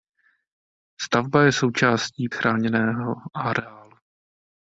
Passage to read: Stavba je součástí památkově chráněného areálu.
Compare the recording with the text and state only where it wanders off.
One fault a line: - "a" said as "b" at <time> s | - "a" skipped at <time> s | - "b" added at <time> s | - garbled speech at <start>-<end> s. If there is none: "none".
- "památkově" skipped at 2.3 s